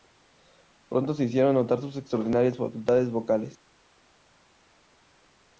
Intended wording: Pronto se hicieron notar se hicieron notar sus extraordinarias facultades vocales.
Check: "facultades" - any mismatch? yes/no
no